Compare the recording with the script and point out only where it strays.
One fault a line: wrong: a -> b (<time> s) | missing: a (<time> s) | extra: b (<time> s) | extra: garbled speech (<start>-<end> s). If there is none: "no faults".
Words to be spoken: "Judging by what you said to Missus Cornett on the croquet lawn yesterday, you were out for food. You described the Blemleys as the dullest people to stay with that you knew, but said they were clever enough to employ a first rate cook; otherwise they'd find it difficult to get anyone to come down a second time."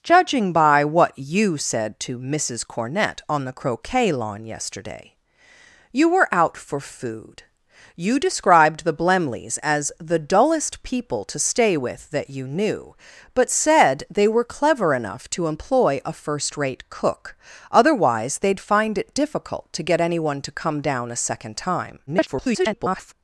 extra: garbled speech (22.1-23.1 s)